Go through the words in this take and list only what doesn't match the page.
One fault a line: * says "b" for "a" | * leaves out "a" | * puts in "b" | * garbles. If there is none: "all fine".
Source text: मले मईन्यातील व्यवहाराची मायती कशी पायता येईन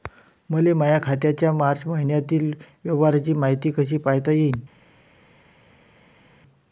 * puts in "माया खात्याच्या मार्च"